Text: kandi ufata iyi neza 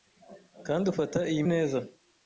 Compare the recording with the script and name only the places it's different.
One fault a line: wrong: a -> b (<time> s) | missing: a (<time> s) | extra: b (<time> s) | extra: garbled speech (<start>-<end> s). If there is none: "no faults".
no faults